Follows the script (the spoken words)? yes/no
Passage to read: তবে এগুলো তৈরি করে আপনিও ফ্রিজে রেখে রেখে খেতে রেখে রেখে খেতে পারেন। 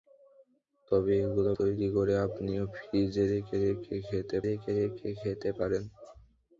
yes